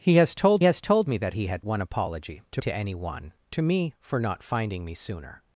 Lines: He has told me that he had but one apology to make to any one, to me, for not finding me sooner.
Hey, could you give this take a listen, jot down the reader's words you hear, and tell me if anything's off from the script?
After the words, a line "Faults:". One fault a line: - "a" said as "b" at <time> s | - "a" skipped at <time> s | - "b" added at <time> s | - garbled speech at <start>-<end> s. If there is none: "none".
He has told has told me that he had one apology to to any one, to me, for not finding me sooner.
Faults:
- "has told" added at 0.6 s
- "but" skipped at 1.6 s
- "make" skipped at 2.6 s